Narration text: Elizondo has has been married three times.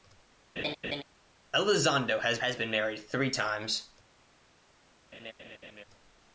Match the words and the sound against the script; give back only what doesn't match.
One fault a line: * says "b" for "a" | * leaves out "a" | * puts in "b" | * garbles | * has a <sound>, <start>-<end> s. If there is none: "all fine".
* has a laugh, 0.6-1.0 s
* has a laugh, 5.1-5.8 s